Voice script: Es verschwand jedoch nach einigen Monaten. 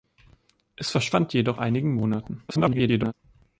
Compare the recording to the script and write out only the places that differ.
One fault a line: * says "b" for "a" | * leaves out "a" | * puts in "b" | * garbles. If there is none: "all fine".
* leaves out "nach"
* garbles